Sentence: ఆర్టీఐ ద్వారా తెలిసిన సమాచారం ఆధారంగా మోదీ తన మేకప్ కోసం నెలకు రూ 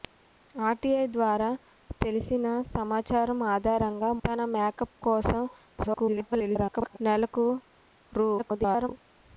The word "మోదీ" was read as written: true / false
false